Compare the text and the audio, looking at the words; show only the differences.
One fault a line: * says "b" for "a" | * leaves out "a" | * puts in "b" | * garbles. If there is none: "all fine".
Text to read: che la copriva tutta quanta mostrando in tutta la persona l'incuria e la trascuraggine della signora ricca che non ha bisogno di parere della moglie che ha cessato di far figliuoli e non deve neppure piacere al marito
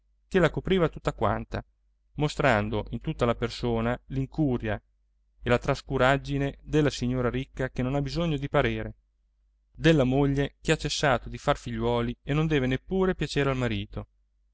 all fine